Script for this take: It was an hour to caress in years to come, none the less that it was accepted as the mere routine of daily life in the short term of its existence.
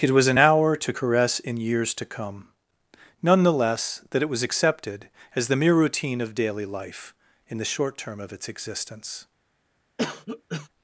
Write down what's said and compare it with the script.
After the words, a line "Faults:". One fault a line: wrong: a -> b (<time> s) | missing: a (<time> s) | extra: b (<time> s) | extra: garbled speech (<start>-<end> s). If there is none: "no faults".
It was an hour to caress in years to come, none the less that it was accepted as the mere routine of daily life in the short term of its existence.
Faults:
no faults